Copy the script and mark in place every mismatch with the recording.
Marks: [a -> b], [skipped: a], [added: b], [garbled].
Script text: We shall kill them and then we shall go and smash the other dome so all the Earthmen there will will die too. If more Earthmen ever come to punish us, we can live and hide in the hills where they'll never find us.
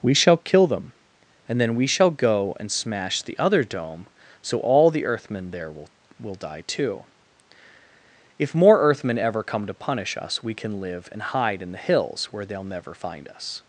We shall kill them and then we shall go and smash the other dome so all the Earthmen there will will die too. If more Earthmen ever come to punish us, we can live and hide in the hills where they'll never find us.